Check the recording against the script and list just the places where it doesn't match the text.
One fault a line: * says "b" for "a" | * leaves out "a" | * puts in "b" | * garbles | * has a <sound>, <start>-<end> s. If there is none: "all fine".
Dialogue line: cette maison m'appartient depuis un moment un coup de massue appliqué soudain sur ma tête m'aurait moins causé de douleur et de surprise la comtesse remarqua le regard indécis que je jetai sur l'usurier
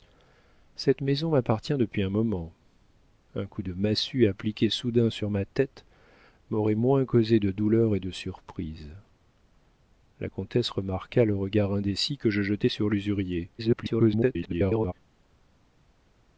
* garbles